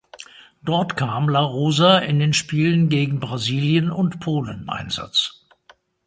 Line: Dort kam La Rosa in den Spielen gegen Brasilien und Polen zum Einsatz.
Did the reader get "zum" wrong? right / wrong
wrong